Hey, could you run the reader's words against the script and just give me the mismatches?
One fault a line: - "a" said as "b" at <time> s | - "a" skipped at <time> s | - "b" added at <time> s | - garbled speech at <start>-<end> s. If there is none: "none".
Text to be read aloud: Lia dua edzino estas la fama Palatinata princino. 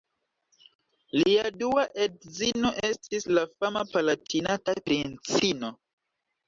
- "estas" said as "estis" at 2.9 s